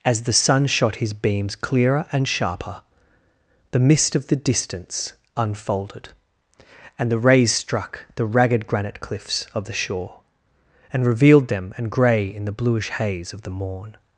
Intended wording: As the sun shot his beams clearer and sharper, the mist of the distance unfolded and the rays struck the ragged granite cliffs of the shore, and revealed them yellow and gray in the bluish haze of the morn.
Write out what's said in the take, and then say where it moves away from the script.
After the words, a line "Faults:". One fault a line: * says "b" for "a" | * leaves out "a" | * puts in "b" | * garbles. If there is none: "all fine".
As the sun shot his beams clearer and sharper, the mist of the distance unfolded and the rays struck the ragged granite cliffs of the shore, and revealed them and gray in the bluish haze of the morn.
Faults:
* leaves out "yellow"